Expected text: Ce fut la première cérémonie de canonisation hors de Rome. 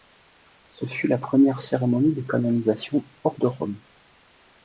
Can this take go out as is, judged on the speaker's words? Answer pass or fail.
pass